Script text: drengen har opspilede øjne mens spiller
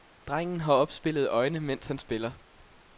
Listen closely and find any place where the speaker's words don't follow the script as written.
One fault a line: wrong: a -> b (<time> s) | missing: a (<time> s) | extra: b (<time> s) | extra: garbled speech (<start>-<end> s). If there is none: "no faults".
extra: han (1.9 s)